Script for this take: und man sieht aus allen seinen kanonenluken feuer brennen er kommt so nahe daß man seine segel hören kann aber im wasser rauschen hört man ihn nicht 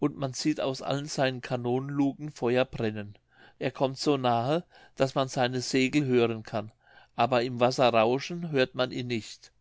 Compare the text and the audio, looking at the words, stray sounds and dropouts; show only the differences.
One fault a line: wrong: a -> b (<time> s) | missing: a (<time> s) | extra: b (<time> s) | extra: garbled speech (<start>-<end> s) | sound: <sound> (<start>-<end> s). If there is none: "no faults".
no faults